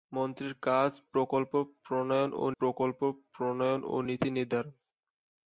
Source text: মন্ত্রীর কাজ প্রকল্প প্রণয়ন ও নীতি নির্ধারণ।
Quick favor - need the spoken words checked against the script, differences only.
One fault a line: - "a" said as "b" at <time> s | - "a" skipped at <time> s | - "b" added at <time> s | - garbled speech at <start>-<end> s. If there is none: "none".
- "প্রকল্প প্রণয়ন ও" added at 2.6 s